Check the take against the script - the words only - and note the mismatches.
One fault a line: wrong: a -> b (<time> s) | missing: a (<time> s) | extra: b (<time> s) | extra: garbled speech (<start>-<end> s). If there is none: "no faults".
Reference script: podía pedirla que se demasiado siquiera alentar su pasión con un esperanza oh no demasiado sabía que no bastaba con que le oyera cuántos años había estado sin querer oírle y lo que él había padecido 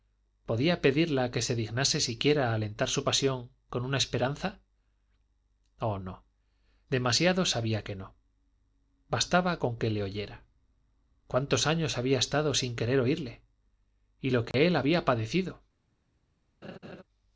wrong: demasiado -> dignase (1.6 s)
wrong: un -> una (3.8 s)